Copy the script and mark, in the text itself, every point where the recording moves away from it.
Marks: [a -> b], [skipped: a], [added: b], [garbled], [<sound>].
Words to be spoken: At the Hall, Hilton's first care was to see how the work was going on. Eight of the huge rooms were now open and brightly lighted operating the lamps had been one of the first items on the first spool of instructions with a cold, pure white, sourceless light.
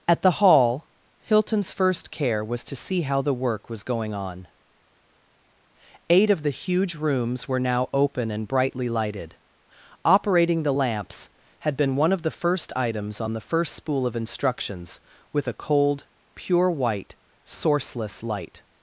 At the Hall, Hilton's first care was to see how the work was going on. Eight of the huge rooms were now open and brightly lighted operating the lamps had been one of the first items on the first spool of instructions with a cold, pure white, sourceless light.